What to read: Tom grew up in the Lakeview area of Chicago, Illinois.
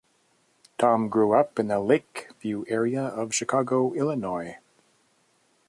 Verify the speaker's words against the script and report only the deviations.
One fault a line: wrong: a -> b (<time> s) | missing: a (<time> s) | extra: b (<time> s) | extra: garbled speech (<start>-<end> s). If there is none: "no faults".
no faults